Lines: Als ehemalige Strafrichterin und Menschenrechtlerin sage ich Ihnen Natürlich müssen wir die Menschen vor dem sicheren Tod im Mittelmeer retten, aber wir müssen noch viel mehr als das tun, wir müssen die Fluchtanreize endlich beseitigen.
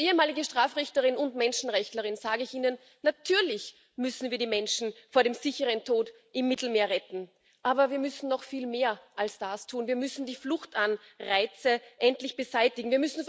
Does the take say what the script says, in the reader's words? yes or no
yes